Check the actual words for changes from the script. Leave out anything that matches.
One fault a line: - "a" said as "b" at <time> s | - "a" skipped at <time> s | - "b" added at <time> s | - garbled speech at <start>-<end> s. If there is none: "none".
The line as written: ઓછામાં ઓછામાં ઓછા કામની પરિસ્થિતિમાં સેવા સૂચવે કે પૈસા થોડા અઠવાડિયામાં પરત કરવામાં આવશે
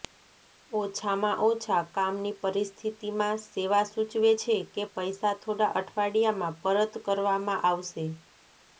- "ઓછામાં" skipped at 1.4 s
- "છે" added at 4.4 s